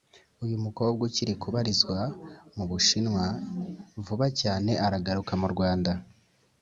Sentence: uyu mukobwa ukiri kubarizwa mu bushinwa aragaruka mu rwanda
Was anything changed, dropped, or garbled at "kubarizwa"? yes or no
no